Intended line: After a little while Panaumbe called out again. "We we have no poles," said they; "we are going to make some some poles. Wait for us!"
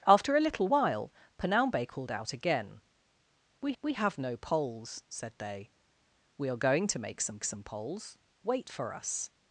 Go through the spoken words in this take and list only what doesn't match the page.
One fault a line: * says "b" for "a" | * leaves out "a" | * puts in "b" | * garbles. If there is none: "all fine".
all fine